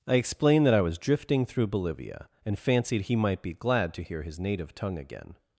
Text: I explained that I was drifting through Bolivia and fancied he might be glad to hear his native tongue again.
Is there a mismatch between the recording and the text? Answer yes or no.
no